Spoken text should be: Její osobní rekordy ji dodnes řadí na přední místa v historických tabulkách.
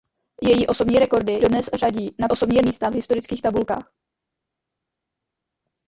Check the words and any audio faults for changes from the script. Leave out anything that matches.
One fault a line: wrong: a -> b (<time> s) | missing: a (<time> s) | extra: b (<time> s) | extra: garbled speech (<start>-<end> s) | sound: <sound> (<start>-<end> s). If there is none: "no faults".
missing: ji (1.4 s)
wrong: přední -> osobní (2.3 s)